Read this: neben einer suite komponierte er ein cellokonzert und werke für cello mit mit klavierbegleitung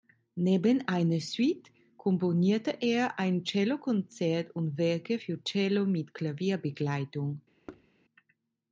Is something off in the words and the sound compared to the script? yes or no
yes